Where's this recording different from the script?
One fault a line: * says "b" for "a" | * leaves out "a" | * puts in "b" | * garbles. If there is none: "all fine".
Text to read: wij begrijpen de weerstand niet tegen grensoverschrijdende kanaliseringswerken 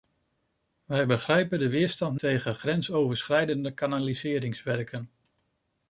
* leaves out "niet"